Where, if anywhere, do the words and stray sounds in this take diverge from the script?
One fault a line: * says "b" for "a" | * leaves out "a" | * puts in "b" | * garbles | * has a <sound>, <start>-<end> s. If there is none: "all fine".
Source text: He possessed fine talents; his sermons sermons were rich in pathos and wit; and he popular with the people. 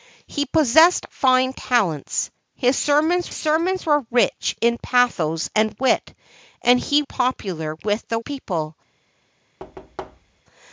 * has a thud, 9.6-10.4 s